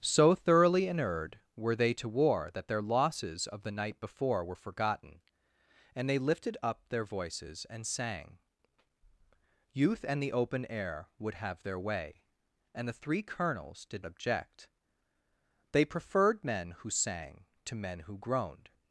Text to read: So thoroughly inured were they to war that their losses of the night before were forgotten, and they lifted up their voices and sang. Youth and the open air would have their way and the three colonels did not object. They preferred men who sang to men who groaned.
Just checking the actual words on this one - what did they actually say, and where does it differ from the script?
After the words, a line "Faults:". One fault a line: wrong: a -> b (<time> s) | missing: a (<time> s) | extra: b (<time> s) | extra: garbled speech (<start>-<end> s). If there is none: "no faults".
So thoroughly inured were they to war that their losses of the night before were forgotten, and they lifted up their voices and sang. Youth and the open air would have their way and the three colonels did object. They preferred men who sang to men who groaned.
Faults:
missing: not (14.1 s)